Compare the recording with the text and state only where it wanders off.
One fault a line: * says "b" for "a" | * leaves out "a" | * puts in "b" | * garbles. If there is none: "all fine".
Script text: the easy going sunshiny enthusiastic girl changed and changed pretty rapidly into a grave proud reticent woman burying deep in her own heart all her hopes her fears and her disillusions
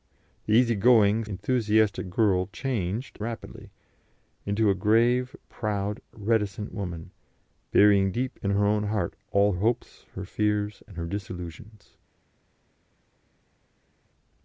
* leaves out "sunshiny"
* leaves out "and changed pretty"
* leaves out "her"